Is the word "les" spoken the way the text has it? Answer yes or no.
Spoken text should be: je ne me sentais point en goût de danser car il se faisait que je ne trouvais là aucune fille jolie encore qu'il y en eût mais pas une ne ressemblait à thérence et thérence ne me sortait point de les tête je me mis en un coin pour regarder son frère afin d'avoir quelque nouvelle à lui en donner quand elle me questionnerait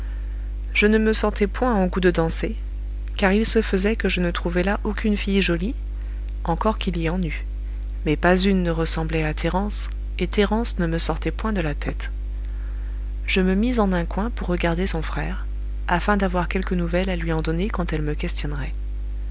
no